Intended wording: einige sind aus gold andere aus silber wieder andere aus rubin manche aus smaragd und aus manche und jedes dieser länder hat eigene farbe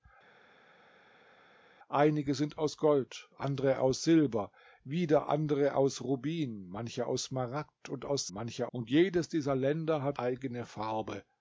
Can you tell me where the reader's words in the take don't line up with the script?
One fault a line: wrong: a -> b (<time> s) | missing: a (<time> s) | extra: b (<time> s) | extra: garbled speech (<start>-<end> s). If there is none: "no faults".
no faults